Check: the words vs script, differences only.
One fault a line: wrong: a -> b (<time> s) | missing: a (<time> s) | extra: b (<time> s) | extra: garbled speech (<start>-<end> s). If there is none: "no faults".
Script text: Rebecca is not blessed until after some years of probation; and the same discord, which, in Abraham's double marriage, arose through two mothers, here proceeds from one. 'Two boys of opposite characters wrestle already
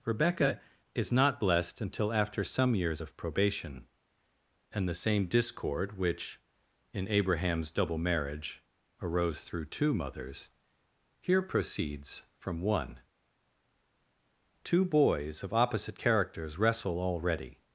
no faults